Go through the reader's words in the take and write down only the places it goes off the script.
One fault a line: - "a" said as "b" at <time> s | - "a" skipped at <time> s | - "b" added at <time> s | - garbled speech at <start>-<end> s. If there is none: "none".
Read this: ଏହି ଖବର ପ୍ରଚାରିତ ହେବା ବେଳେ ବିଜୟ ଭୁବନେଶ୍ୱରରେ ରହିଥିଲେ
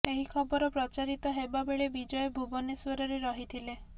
none